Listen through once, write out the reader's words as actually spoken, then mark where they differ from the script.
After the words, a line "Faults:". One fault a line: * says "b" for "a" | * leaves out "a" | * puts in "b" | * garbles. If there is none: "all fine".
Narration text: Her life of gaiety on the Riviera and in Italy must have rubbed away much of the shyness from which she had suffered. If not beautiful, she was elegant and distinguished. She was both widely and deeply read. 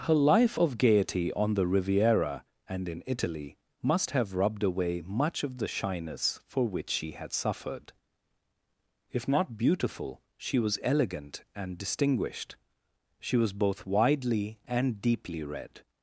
Her life of gaiety on the Riviera and in Italy must have rubbed away much of the shyness for which she had suffered. If not beautiful, she was elegant and distinguished. She was both widely and deeply read.
Faults:
* says "for" for "from"